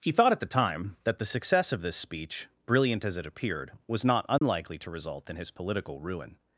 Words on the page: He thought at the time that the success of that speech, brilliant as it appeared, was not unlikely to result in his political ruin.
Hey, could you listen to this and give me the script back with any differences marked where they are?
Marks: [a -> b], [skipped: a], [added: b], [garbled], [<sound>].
He thought at the time that the success of [that -> this] speech, brilliant as it appeared, was not unlikely [dropout] to result in his political ruin.